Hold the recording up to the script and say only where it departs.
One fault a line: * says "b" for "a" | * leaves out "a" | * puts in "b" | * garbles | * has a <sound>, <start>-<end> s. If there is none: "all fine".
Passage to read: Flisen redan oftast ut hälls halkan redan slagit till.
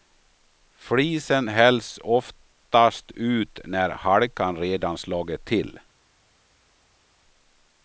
* says "hälls" for "redan"
* says "när" for "hälls"